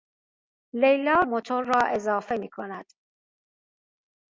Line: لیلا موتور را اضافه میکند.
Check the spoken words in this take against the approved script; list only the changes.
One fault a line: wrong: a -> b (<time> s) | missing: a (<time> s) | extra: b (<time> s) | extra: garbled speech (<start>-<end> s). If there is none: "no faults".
no faults